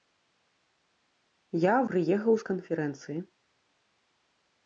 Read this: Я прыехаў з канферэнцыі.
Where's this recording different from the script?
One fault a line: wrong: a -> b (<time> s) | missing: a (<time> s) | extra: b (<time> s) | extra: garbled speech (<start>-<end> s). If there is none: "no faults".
no faults